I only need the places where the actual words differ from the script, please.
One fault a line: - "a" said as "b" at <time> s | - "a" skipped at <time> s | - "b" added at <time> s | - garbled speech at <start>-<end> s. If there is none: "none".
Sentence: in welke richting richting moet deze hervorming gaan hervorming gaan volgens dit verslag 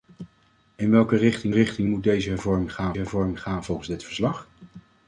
none